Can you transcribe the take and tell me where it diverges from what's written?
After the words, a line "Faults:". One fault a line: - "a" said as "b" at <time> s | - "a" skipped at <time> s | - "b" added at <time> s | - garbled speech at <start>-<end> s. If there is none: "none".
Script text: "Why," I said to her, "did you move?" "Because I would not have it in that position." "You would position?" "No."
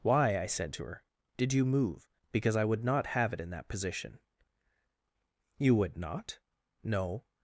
"Why," I said to her, "did you move?" "Because I would not have it in that position." "You would not?" "No."
Faults:
- "position" said as "not" at 6.0 s